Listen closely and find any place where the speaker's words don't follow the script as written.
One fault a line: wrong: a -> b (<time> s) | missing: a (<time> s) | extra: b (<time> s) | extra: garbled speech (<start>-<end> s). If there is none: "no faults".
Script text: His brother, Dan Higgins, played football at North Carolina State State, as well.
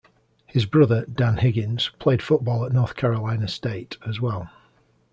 missing: State (4.0 s)